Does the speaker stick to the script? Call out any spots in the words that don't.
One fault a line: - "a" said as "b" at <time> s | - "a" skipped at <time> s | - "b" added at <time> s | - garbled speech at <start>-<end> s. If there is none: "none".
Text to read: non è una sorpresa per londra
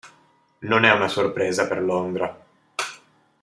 none